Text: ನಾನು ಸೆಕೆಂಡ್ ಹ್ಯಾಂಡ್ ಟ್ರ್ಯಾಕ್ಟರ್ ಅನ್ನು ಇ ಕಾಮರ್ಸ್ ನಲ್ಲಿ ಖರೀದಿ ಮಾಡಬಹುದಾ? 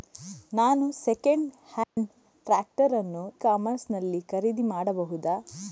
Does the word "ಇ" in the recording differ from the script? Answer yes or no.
yes